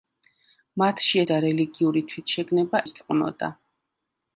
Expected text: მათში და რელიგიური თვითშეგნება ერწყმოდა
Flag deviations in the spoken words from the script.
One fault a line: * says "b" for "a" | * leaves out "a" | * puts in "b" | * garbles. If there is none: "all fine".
all fine